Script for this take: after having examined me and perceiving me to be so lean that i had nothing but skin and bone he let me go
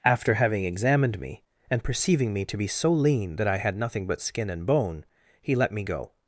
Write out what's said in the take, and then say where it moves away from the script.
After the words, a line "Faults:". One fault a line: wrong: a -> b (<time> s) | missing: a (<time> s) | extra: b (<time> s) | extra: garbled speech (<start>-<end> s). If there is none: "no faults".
after having examined me and perceiving me to be so lean that i had nothing but skin and bone he let me go
Faults:
no faults